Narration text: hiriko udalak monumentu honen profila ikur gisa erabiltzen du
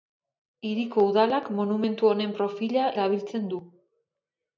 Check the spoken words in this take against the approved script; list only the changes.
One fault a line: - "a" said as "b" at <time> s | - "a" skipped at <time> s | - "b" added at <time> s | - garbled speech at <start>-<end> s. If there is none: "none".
- "ikur gisa" skipped at 2.9 s